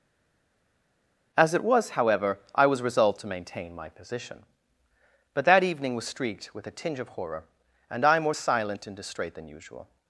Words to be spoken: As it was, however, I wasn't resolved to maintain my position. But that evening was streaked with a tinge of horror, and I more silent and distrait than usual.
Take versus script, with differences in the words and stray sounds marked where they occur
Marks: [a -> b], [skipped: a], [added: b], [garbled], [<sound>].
As it was, however, I [wasn't -> was] resolved to maintain my position. But that evening was streaked with a tinge of horror, and I more silent and distrait than usual.